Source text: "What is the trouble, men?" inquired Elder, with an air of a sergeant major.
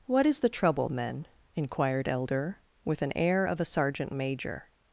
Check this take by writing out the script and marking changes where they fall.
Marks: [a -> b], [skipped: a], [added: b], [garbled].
"What is the trouble, men?" inquired Elder, with an air of a sergeant major.